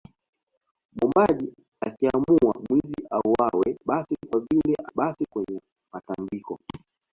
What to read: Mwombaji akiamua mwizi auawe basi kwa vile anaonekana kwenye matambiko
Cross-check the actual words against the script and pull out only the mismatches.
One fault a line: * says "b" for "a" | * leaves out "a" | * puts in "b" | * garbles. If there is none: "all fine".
* says "basi" for "anaonekana"